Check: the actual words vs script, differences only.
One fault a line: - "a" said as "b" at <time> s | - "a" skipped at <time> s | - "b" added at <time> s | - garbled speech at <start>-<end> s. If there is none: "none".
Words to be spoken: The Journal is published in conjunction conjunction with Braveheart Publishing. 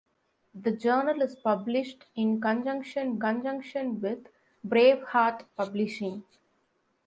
none